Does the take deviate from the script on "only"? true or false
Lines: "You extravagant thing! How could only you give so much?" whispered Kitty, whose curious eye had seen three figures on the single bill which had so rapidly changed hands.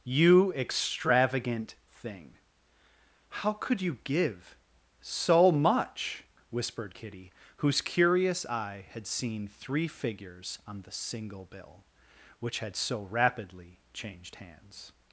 true